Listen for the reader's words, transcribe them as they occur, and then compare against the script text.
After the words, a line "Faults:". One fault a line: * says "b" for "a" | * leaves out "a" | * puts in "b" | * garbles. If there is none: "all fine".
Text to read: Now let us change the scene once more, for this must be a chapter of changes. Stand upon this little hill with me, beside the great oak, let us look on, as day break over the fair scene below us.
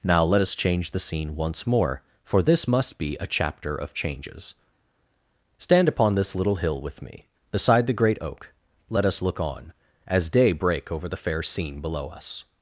Now let us change the scene once more, for this must be a chapter of changes. Stand upon this little hill with me, beside the great oak, let us look on, as day break over the fair scene below us.
Faults:
all fine